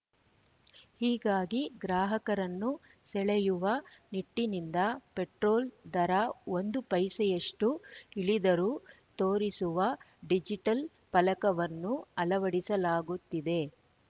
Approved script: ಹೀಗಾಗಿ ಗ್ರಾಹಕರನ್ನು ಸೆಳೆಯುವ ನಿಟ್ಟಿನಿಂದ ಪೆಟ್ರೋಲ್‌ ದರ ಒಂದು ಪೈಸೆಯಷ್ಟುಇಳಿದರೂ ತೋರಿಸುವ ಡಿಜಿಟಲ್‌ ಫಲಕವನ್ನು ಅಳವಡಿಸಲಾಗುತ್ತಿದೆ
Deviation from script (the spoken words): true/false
false